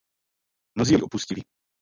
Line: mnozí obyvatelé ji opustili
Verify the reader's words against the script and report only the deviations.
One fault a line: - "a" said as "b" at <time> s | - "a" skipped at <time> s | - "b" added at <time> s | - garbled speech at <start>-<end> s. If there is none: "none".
- "obyvatelé" skipped at 0.9 s